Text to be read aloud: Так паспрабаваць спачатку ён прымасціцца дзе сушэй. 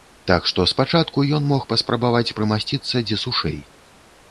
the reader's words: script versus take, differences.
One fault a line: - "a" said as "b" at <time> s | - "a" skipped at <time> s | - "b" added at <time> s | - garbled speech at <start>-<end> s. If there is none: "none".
- "паспрабаваць" said as "што" at 0.5 s
- "мог паспрабаваць" added at 1.5 s